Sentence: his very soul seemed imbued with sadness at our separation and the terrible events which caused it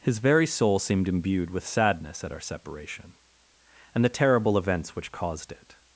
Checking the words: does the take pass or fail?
pass